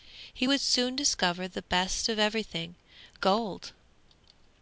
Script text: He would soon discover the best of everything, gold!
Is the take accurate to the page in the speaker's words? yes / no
yes